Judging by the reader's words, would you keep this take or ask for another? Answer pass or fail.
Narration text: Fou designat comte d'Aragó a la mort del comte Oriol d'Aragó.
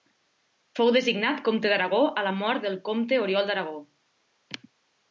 pass